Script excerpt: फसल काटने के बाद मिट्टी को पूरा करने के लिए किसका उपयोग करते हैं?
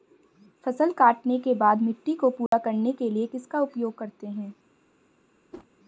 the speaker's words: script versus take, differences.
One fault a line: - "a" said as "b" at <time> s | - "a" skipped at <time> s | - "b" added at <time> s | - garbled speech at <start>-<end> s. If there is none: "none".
none